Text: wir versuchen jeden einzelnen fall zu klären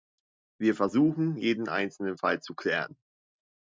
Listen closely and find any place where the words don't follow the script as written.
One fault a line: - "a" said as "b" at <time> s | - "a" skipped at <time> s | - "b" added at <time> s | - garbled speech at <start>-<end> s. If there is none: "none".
none